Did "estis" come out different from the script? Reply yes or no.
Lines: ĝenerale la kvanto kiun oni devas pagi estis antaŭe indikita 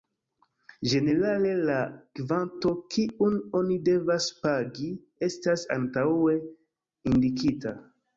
yes